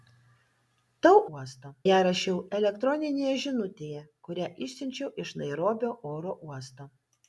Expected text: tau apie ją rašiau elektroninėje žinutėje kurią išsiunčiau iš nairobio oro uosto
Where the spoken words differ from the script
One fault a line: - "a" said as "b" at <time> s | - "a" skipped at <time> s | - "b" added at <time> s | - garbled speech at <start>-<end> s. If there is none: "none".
- "apie" said as "uosto" at 1.4 s